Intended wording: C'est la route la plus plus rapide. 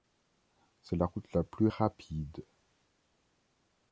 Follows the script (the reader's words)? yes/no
no